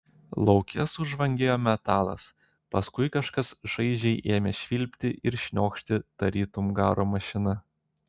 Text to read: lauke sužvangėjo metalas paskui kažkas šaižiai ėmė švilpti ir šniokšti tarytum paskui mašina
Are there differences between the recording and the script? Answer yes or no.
yes